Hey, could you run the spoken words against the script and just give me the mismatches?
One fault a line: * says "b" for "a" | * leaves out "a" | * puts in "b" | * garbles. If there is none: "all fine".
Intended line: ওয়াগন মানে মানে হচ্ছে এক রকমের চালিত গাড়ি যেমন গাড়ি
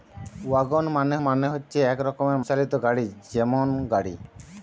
all fine